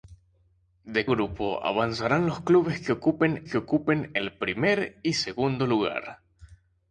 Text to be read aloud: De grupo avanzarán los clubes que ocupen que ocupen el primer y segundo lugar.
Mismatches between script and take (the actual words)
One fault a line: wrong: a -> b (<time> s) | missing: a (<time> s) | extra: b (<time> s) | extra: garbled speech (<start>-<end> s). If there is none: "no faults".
no faults